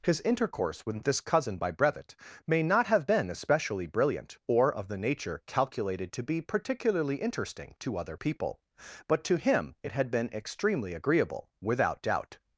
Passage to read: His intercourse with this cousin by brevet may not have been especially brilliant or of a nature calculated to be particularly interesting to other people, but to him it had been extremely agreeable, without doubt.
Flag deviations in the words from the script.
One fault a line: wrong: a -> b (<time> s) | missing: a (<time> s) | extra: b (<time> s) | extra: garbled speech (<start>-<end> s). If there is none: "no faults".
wrong: a -> the (4.9 s)